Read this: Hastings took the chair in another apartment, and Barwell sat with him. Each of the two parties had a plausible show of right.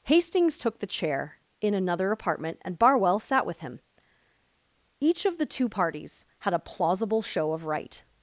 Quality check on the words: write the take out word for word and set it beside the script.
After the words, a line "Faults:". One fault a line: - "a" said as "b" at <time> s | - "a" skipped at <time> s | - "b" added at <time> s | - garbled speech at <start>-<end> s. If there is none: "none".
Hastings took the chair in another apartment, and Barwell sat with him. Each of the two parties had a plausible show of right.
Faults:
none